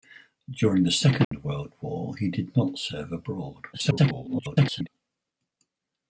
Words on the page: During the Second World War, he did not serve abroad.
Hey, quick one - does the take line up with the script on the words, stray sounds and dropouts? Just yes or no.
no